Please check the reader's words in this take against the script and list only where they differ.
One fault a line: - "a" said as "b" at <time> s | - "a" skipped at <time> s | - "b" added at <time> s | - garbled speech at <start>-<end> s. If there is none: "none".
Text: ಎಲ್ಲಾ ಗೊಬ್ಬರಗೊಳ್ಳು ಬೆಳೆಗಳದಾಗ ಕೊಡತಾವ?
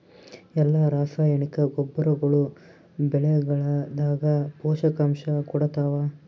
- "ರಾಸಾಯನಿಕ" added at 0.9 s
- "ಪೋಷಕಾಂಶ" added at 4.6 s